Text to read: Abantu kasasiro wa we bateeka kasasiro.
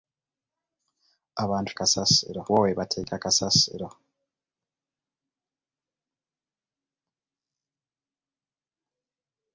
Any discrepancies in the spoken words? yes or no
no